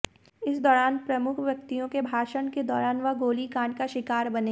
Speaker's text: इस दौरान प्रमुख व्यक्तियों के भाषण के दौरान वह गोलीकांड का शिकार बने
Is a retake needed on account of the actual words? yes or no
no